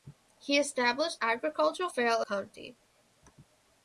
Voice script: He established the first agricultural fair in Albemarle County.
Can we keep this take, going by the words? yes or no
no